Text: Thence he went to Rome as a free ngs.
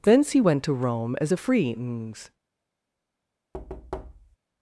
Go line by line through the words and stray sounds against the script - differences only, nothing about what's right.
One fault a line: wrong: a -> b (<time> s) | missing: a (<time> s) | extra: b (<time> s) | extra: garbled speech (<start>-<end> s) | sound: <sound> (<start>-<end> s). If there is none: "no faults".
sound: thud (3.5-4.4 s)